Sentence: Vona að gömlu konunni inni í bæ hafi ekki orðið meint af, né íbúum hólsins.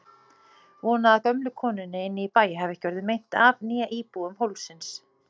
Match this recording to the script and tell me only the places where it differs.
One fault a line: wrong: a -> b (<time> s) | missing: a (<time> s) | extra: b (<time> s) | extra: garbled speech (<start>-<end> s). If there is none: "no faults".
no faults